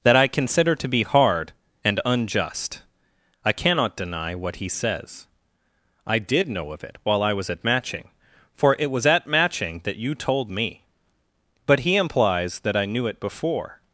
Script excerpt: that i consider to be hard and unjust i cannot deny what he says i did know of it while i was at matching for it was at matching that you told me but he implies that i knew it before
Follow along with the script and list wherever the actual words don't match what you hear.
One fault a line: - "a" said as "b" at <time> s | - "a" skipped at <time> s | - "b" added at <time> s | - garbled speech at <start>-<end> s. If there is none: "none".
none